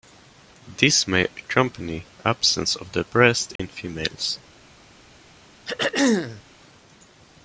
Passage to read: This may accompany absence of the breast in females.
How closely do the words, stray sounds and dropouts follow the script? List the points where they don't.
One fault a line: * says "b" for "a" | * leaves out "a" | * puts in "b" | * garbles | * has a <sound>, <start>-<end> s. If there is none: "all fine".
* has a dropout, 3.6-3.6 s
* has a throat clearing, 5.7-6.4 s